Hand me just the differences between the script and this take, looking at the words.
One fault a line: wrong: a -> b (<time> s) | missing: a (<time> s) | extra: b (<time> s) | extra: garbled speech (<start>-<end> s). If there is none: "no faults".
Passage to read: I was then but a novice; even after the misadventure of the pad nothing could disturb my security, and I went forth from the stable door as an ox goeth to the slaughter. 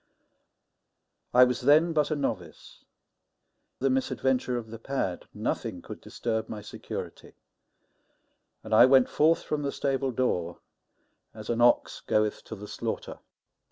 missing: even after (2.8 s)